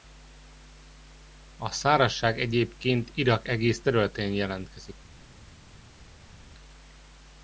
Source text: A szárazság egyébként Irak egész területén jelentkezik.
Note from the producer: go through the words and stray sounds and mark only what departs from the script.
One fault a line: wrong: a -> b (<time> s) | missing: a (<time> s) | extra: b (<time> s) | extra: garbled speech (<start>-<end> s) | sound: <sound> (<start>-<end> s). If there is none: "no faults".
no faults